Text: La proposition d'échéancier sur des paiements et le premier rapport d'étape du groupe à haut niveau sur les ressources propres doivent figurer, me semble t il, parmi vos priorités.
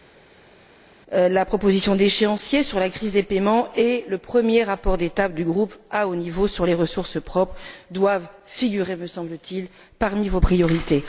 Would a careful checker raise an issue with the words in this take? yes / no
yes